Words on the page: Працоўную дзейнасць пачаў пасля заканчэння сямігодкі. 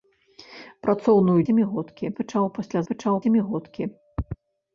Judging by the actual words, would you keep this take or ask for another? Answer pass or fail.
fail